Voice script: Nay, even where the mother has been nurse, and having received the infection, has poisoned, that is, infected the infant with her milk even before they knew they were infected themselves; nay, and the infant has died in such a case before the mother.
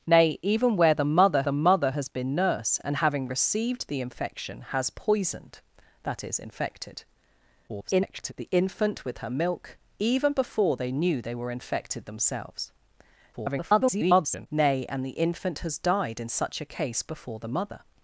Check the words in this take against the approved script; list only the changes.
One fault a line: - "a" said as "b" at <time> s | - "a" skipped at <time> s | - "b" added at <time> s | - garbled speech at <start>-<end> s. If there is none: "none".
- "the mother" added at 1.4 s
- garbled speech at 7.7-8.3 s
- garbled speech at 13.3-14.5 s